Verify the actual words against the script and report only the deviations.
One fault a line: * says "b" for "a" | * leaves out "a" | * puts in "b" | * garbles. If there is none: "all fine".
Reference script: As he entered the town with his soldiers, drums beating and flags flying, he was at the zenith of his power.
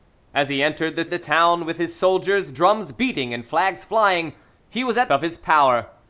* puts in "the"
* leaves out "the zenith"